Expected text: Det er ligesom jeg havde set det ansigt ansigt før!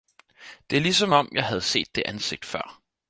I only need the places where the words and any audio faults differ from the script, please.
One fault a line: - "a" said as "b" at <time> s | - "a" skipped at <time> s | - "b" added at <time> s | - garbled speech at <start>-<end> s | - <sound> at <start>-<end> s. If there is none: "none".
- "om" added at 1.1 s
- "ansigt" skipped at 2.5 s